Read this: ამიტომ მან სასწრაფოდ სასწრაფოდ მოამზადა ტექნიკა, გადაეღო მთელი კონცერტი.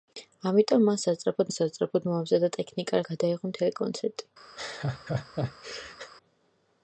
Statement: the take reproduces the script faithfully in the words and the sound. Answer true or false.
false